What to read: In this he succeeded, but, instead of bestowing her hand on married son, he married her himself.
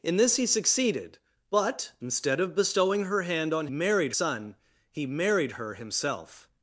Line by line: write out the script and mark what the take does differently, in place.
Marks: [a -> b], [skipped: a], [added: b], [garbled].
In this he succeeded, but, instead of bestowing her hand on married son, he married her himself.